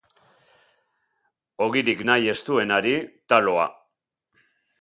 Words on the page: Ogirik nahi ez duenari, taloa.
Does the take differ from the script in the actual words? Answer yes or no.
no